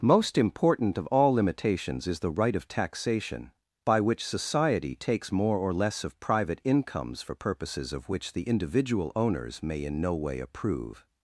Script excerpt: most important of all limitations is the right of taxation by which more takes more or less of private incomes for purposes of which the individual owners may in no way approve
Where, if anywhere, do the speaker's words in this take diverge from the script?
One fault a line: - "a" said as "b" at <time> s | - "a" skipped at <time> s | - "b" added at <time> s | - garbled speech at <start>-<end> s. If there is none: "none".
- "more" said as "society" at 4.2 s